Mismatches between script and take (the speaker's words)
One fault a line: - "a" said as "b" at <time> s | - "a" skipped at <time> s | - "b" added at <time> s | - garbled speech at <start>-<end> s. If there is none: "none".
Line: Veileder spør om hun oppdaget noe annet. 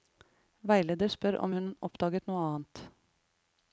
none